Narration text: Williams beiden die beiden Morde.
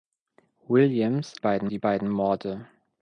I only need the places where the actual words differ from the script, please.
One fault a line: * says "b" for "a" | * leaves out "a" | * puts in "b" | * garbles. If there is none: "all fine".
all fine